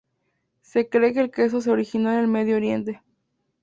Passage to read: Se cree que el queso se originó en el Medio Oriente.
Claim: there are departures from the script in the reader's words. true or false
false